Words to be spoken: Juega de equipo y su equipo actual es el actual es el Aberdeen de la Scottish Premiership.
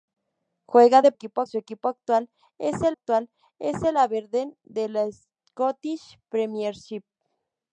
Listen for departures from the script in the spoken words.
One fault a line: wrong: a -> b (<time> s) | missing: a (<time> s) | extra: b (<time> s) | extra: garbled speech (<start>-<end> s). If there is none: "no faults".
no faults